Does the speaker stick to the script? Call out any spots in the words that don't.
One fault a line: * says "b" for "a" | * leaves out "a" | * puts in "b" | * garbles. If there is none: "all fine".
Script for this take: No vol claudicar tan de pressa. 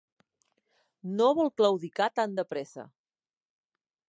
all fine